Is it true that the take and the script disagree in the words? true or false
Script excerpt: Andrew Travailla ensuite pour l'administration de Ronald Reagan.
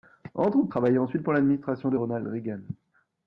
false